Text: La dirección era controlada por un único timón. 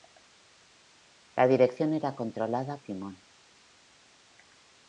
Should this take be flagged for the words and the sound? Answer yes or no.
yes